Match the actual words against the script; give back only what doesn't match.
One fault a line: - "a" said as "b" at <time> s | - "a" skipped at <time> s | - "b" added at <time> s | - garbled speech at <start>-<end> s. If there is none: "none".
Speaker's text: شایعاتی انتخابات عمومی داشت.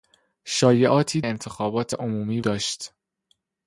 none